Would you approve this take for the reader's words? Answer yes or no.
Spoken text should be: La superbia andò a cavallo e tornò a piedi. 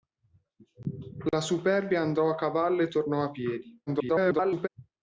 no